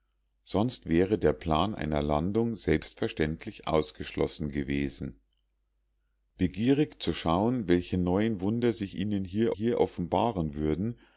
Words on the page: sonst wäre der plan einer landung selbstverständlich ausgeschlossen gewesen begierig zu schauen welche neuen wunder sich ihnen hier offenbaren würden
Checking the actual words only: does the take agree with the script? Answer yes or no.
no